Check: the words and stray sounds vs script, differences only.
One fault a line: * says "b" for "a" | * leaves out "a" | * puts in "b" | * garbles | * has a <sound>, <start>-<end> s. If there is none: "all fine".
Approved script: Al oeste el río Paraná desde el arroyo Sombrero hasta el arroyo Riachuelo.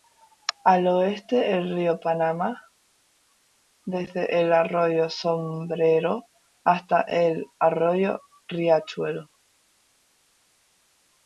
all fine